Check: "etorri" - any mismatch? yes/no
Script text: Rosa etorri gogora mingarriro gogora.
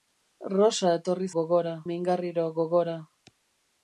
no